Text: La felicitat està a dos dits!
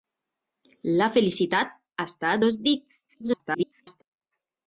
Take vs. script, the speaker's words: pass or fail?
fail